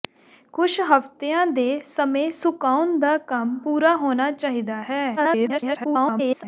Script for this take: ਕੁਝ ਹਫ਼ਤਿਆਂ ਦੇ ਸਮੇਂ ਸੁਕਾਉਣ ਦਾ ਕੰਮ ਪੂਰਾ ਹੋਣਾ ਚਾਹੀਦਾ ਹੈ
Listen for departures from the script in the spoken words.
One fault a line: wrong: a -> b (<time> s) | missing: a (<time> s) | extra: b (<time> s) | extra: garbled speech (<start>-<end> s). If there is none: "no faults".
extra: garbled speech (5.2-6.4 s)